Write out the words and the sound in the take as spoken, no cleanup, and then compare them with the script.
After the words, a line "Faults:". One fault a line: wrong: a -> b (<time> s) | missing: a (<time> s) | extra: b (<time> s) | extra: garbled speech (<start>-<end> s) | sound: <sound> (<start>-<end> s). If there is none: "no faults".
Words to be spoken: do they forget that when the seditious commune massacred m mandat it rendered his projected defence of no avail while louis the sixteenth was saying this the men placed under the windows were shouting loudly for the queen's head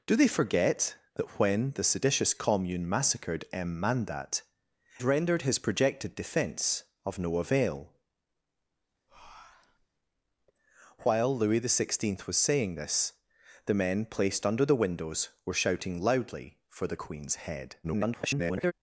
do they forget that when the seditious commune massacred m mandat rendered his projected defence of no avail while louis the sixteenth was saying this the men placed under the windows were shouting loudly for the queen's head [garbled]
Faults:
missing: it (4.4 s)
sound: breath (9.1-9.9 s)
extra: garbled speech (17.8-18.7 s)